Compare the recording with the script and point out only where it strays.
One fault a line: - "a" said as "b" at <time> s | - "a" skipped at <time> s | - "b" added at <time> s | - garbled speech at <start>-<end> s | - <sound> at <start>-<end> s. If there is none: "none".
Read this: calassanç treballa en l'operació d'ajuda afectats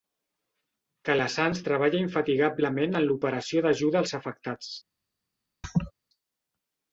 - "infatigablement" added at 2.0 s
- "als" added at 4.0 s
- laugh at 5.6-5.9 s